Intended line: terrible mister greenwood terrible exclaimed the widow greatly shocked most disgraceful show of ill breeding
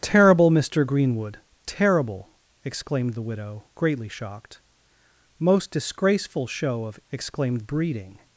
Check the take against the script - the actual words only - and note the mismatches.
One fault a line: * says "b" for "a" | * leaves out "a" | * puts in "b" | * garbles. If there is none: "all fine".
* says "exclaimed" for "ill"